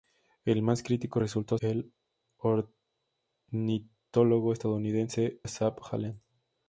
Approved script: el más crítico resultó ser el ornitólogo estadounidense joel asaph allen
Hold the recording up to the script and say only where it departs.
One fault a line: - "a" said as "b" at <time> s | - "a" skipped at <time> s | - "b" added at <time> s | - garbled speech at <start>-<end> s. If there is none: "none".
- "ser" skipped at 1.6 s
- "joel" skipped at 5.4 s